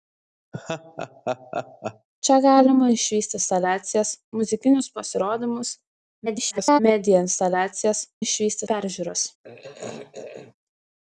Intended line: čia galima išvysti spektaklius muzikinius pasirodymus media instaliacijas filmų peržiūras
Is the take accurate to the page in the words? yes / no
no